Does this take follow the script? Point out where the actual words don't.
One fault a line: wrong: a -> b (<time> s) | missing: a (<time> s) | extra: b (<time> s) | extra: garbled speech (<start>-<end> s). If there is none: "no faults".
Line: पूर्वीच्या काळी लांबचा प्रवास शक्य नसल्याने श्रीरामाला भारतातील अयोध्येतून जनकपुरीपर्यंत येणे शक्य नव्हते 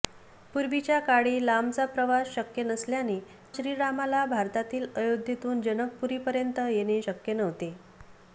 no faults